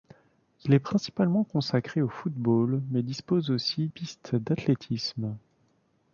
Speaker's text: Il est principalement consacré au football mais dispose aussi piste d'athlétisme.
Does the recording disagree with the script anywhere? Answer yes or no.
no